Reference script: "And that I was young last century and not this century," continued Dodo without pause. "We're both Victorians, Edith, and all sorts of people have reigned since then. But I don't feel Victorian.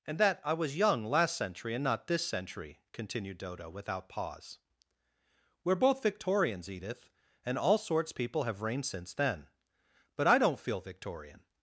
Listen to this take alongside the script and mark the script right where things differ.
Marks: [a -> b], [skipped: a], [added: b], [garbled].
"And that I was young last century and not this century," continued Dodo without pause. "We're both Victorians, Edith, and all sorts [skipped: of] people have reigned since then. But I don't feel Victorian.